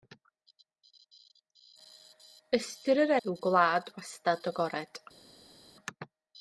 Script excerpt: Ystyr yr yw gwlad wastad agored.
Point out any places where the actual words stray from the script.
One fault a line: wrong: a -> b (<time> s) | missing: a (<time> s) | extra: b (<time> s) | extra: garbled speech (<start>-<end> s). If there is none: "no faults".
no faults